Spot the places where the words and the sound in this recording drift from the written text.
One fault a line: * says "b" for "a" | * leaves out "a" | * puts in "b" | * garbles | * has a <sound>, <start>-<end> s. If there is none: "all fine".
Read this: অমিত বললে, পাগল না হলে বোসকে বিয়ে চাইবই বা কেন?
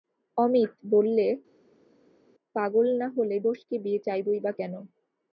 all fine